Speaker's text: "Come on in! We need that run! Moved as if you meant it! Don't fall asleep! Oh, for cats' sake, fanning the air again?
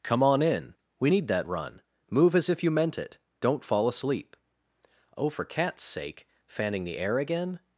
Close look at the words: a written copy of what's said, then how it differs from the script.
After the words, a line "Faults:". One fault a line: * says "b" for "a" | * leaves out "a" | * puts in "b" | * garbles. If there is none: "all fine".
"Come on in! We need that run! Move as if you meant it! Don't fall asleep! Oh, for cats' sake, fanning the air again?
Faults:
* says "Move" for "Moved"